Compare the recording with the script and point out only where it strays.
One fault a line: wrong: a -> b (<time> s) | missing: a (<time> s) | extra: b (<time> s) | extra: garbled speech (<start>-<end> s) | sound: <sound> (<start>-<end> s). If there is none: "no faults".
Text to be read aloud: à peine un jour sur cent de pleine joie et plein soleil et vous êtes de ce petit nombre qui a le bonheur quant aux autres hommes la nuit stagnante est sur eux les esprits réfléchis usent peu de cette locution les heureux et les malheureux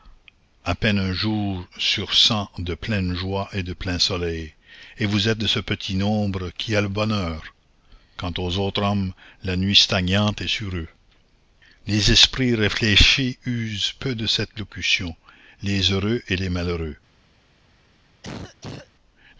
extra: de (3.6 s)
sound: cough (18.2-18.9 s)